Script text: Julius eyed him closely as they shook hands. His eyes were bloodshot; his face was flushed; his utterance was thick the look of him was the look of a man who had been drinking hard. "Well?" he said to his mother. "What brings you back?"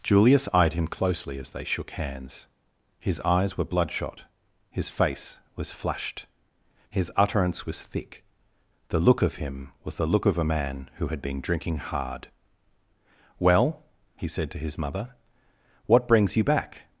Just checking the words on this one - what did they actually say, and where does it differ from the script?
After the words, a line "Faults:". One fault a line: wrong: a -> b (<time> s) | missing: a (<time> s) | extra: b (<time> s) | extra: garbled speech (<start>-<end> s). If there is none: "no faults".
Julius eyed him closely as they shook hands. His eyes were bloodshot; his face was flushed; his utterance was thick the look of him was the look of a man who had been drinking hard. "Well?" he said to his mother. "What brings you back?"
Faults:
no faults